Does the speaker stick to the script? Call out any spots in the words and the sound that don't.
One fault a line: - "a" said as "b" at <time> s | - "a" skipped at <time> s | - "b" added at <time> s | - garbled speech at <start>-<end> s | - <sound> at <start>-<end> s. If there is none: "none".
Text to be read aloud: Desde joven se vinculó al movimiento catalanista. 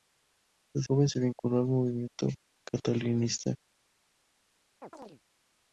- chirp at 4.8-5.2 s